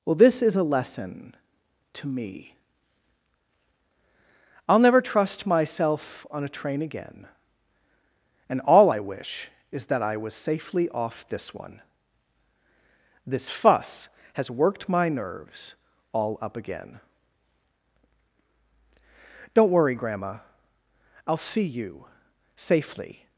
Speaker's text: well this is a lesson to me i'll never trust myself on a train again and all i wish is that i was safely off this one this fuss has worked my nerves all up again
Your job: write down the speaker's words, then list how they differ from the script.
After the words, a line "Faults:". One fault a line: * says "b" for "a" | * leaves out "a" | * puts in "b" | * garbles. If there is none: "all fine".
well this is a lesson to me i'll never trust myself on a train again and all i wish is that i was safely off this one this fuss has worked my nerves all up again don't worry grandma i'll see you safely
Faults:
* puts in "don't worry grandma i'll see you safely"